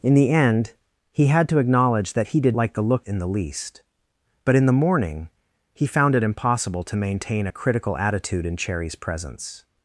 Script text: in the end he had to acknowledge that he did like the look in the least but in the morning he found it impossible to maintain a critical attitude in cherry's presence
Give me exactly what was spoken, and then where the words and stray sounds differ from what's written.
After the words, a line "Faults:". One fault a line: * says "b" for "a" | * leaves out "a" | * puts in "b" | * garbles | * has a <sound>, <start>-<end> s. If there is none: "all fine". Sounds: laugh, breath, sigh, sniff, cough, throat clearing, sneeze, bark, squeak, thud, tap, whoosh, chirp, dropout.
in the end he had to acknowledge that he did like the look in the least but in the morning he found it impossible to maintain a critical attitude in cherry's presence
Faults:
all fine